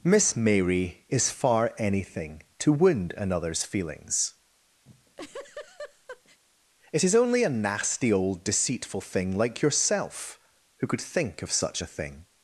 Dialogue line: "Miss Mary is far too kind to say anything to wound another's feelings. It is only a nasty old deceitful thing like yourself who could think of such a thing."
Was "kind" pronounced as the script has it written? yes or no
no